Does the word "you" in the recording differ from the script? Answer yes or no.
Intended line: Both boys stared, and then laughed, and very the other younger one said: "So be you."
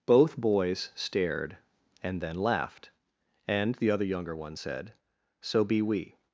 yes